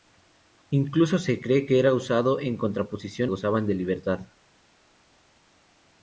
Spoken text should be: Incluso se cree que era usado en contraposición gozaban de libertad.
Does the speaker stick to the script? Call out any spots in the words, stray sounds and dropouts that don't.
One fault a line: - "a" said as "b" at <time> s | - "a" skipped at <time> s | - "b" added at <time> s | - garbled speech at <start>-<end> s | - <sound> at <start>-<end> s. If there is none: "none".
none